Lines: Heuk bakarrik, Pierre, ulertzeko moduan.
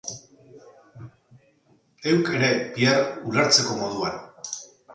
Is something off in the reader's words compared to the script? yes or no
yes